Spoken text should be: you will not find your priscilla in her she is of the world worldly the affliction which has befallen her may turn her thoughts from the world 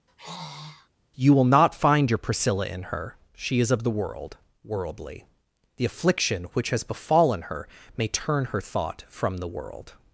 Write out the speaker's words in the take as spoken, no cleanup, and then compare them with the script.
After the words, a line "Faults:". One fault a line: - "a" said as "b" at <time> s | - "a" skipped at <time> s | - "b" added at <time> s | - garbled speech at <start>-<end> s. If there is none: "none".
you will not find your priscilla in her she is of the world worldly the affliction which has befallen her may turn her thought from the world
Faults:
- "thoughts" said as "thought" at 8.6 s